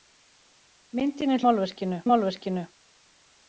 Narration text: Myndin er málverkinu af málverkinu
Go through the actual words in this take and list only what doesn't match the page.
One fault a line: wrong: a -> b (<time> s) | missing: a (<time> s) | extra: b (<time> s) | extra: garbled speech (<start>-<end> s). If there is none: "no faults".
no faults